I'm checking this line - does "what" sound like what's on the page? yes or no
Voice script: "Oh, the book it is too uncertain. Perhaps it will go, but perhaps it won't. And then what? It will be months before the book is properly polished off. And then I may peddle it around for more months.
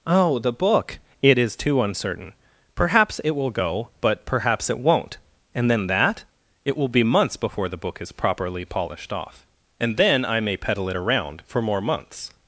no